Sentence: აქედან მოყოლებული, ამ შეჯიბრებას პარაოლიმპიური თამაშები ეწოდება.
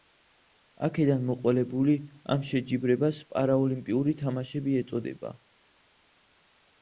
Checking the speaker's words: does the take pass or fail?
pass